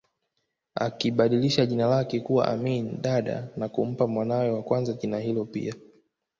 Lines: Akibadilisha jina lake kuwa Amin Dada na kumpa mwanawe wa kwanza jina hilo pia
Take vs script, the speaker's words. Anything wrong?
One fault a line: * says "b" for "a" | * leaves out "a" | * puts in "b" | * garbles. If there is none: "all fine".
all fine